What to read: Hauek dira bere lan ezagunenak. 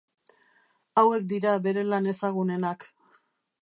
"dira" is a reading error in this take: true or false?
false